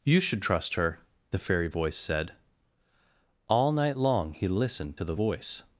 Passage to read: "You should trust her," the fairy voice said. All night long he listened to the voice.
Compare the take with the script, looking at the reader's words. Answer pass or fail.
pass